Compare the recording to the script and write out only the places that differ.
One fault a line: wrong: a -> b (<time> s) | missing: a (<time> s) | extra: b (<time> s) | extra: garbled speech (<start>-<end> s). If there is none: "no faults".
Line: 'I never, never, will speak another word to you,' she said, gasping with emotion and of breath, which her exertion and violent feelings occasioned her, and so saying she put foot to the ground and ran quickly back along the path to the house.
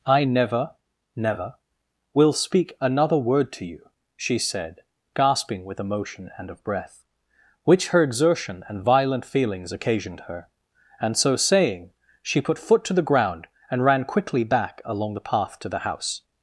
no faults